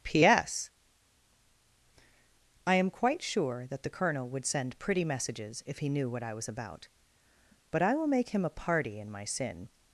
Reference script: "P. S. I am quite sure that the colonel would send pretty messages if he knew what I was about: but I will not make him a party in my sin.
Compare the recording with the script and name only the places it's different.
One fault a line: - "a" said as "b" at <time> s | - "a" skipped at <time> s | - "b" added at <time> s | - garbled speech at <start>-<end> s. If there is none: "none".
- "not" skipped at 8.1 s